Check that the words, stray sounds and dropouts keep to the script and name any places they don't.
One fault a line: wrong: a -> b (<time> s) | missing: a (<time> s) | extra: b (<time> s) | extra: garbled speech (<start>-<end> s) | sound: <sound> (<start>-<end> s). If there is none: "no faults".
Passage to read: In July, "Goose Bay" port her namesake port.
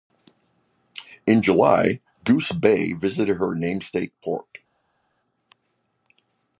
wrong: port -> visited (2.9 s)